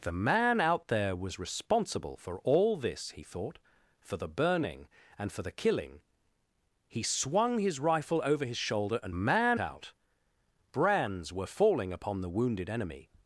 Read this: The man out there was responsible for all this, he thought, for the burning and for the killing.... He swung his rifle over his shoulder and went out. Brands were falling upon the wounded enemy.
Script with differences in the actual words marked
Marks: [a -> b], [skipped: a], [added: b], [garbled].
The man out there was responsible for all this, he thought, for the burning and for the killing.... He swung his rifle over his shoulder and [went -> man] out. Brands were falling upon the wounded enemy.